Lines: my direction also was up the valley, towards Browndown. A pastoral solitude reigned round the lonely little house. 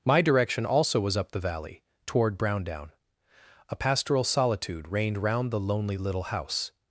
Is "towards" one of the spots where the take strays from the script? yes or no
yes